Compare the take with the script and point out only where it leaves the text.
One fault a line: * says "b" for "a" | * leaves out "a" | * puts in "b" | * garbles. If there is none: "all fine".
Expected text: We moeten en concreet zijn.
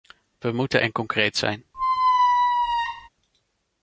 all fine